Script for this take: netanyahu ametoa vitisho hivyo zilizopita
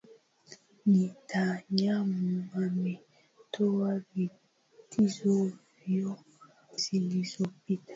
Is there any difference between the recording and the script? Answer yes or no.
no